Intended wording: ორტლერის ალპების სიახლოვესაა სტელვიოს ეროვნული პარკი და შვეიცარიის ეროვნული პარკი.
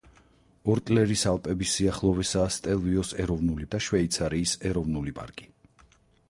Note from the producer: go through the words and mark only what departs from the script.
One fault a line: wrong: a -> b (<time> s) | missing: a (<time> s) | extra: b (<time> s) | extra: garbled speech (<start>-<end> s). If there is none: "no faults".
missing: პარკი (3.7 s)